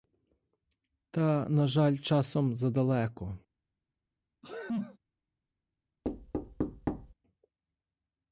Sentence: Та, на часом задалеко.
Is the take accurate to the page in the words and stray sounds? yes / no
no